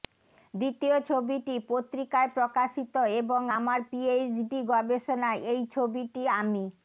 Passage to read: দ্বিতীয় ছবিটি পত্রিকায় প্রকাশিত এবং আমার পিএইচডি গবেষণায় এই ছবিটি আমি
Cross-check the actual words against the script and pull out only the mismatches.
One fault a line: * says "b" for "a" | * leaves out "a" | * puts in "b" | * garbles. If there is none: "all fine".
all fine